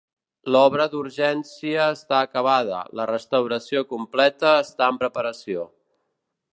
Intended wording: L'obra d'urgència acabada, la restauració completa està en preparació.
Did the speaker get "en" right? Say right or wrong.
right